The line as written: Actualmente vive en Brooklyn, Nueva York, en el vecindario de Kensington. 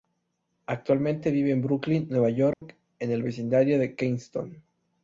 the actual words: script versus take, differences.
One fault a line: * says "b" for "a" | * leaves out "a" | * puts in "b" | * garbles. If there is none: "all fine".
all fine